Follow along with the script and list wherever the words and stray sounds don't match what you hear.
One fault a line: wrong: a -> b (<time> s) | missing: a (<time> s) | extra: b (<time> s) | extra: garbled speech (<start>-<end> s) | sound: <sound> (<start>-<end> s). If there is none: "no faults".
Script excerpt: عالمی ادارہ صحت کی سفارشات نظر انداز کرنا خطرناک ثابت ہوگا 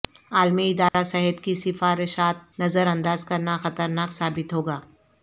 sound: dropout (0.9-0.9 s)